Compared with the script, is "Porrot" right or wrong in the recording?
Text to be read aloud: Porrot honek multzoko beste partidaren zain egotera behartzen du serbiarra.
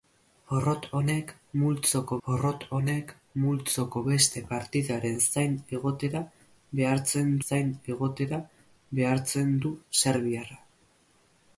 right